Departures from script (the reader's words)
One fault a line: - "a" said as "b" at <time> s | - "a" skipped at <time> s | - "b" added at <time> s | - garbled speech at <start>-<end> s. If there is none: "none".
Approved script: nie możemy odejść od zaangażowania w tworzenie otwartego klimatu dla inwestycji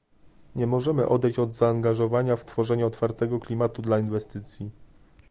none